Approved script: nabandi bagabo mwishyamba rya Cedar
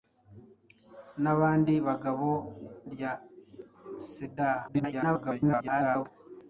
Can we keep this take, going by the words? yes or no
no